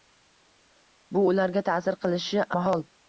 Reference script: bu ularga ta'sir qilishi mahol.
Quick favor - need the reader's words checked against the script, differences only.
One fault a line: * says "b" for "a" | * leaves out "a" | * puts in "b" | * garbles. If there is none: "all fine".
all fine